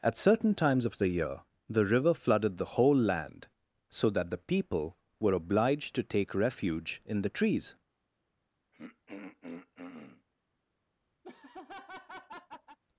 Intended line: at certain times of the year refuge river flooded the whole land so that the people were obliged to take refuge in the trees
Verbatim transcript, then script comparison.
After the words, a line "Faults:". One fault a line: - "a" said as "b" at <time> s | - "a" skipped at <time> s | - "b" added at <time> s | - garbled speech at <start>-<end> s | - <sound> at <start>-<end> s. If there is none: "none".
at certain times of the year the river flooded the whole land so that the people were obliged to take refuge in the trees
Faults:
- "refuge" said as "the" at 1.7 s
- throat clearing at 8.7-10.3 s
- laugh at 11.2-12.8 s